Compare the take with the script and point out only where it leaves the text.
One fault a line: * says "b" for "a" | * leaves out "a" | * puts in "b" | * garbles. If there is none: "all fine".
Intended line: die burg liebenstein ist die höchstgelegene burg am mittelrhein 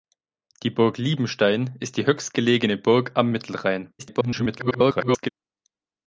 * garbles